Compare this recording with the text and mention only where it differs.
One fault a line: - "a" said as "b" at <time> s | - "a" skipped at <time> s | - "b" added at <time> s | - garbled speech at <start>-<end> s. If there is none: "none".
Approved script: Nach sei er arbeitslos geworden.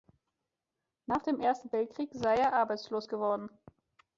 - "dem Ersten Weltkrieg" added at 1.2 s